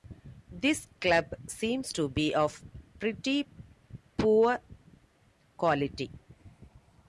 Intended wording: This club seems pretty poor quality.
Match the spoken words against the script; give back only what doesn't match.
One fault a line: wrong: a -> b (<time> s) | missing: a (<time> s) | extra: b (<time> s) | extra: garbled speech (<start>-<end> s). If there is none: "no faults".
extra: to be of (1.9 s)